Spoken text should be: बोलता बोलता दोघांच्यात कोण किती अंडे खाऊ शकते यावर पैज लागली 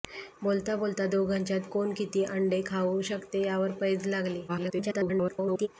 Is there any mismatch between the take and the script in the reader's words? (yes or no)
yes